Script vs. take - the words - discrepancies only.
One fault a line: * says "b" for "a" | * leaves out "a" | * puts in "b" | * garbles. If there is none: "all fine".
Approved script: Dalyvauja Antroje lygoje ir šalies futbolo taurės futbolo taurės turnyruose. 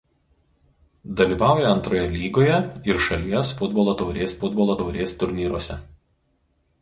all fine